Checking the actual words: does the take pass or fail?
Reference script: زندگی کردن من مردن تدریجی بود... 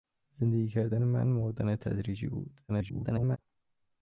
fail